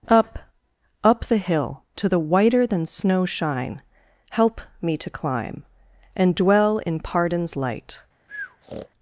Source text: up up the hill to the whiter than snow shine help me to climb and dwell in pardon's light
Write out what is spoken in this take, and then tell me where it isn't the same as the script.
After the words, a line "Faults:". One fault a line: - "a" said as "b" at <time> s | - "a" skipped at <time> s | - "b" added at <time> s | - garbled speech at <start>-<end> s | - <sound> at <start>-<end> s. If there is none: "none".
up up the hill to the whiter than snow shine help me to climb and dwell in pardon's light
Faults:
- breath at 8.3-8.9 s